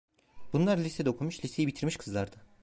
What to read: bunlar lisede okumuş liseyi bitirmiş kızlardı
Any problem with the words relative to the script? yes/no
no